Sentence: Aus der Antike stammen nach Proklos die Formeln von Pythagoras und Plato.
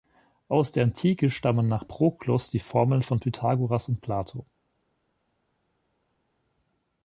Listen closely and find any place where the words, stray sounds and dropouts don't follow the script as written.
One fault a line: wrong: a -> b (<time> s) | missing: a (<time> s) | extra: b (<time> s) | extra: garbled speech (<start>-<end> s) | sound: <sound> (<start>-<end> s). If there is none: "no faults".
no faults